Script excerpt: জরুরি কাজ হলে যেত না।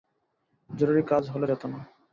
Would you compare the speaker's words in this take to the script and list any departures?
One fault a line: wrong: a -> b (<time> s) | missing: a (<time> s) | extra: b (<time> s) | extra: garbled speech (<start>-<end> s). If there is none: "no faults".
no faults